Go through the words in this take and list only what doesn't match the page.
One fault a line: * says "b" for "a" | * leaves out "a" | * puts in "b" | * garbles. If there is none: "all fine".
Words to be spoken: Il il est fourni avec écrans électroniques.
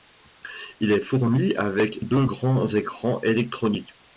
* leaves out "il"
* puts in "deux grands"